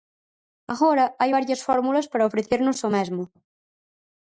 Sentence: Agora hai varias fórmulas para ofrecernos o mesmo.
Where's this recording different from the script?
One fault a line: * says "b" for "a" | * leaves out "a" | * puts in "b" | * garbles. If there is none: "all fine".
all fine